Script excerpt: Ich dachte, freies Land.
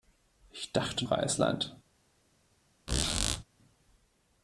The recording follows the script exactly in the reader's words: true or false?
true